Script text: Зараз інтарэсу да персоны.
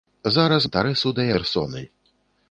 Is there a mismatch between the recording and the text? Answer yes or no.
no